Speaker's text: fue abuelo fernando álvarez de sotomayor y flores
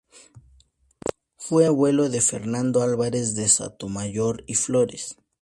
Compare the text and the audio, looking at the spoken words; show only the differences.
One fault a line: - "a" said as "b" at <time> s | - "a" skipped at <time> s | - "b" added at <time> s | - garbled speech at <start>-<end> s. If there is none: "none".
- "de" added at 2.1 s